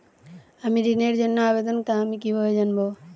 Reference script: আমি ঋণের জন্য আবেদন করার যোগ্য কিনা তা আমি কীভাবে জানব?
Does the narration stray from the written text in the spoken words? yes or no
yes